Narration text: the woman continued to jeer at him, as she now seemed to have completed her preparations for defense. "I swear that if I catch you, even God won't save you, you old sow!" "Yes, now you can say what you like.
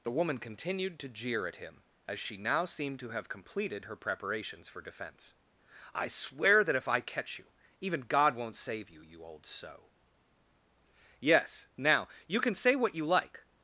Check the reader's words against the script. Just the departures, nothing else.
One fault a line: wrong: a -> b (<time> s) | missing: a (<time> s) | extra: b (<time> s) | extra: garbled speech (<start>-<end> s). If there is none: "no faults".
no faults